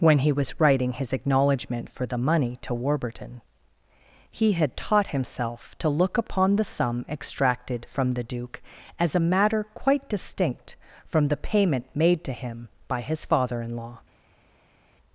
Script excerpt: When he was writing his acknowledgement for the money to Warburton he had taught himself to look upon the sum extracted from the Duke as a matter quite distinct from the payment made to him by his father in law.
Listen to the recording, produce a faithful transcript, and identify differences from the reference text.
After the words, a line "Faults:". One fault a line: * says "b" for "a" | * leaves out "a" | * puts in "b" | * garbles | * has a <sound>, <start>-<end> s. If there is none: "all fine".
When he was writing his acknowledgement for the money to Warburton he had taught himself to look upon the sum extracted from the Duke as a matter quite distinct from the payment made to him by his father in law.
Faults:
all fine